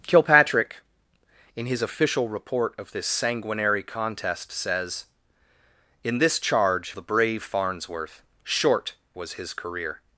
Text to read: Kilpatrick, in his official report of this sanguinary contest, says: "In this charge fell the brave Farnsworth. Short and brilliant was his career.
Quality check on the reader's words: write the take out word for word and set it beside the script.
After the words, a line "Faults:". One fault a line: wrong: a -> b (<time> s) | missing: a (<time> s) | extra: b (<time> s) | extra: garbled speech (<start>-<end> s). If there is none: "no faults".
Kilpatrick, in his official report of this sanguinary contest, says: "In this charge the brave Farnsworth. Short was his career.
Faults:
missing: fell (6.9 s)
missing: and brilliant (8.9 s)